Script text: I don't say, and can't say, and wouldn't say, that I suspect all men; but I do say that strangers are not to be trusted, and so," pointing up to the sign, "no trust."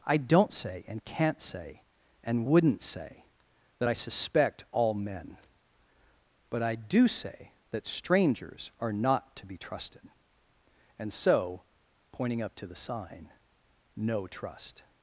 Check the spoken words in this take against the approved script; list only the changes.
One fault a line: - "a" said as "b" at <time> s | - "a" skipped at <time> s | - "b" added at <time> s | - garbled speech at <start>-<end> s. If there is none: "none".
none